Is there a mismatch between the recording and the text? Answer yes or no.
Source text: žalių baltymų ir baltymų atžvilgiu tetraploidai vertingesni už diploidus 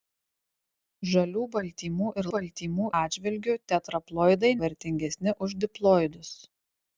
no